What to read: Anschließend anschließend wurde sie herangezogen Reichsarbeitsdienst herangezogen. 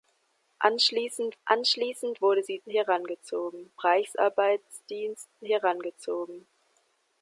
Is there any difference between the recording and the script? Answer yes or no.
no